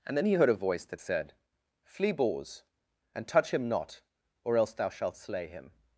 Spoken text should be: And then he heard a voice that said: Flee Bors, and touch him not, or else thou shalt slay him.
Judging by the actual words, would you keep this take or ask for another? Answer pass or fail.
pass